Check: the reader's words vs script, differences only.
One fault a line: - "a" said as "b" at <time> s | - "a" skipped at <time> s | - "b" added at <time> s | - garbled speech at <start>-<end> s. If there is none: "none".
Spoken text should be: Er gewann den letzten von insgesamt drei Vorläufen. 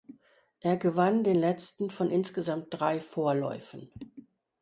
none